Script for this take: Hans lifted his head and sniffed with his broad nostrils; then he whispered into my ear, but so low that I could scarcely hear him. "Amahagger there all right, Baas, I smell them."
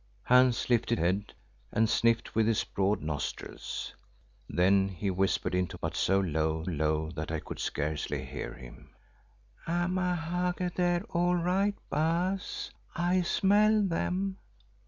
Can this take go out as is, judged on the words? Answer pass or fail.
fail